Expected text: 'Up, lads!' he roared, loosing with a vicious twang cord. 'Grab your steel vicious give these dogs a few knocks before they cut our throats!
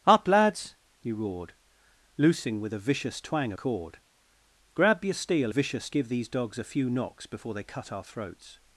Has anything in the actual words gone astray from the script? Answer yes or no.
no